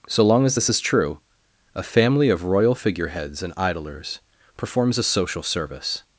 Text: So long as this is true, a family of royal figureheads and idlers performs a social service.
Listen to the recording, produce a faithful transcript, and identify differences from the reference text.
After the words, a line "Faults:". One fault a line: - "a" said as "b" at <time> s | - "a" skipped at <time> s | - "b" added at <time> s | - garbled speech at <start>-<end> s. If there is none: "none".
So long as this is true, a family of royal figureheads and idlers performs a social service.
Faults:
none